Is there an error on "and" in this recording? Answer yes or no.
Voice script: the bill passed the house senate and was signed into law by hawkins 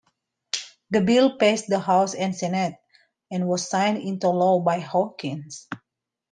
no